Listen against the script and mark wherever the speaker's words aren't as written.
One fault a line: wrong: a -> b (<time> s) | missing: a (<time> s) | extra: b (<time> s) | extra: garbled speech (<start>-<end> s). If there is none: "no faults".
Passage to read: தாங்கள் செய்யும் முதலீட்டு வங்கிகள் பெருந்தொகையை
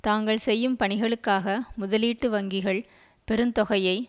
extra: பணிகளுக்காக (0.8 s)